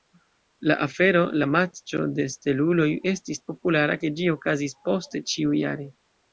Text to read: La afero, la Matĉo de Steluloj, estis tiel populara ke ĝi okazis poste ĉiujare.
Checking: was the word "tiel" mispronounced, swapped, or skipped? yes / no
yes